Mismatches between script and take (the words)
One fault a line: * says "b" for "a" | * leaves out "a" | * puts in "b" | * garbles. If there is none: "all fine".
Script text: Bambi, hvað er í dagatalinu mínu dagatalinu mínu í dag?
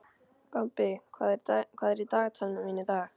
* leaves out "dagatalinu mínu"